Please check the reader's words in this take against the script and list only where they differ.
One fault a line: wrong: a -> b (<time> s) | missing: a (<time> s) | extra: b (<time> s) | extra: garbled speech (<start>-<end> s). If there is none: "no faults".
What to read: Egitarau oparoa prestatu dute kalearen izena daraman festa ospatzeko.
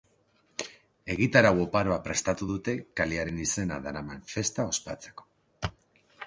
no faults